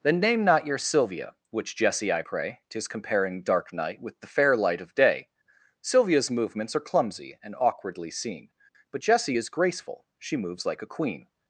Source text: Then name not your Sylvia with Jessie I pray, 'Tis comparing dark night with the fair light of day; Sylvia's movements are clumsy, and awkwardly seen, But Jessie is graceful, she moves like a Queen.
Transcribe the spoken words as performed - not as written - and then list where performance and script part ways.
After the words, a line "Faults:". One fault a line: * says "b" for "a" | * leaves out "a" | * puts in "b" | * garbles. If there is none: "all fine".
Then name not your Sylvia which Jessie I pray, 'Tis comparing dark night with the fair light of day; Sylvia's movements are clumsy, and awkwardly seen, But Jessie is graceful, she moves like a Queen.
Faults:
* says "which" for "with"